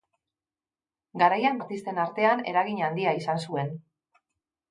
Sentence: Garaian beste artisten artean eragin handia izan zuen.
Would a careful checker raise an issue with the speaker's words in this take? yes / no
yes